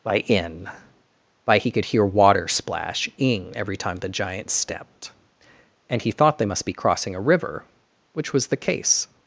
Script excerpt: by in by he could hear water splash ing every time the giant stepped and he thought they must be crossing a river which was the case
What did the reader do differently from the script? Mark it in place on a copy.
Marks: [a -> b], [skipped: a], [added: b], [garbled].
by in by he could hear water splash ing every time the giant stepped and he thought they must be crossing a river which was the case